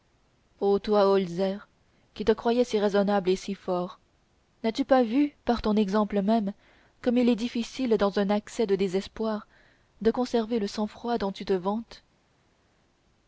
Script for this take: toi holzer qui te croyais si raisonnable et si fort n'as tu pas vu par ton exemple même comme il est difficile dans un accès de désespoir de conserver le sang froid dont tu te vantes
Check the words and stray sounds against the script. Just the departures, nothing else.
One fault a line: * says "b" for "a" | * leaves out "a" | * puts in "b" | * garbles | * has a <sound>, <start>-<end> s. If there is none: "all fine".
all fine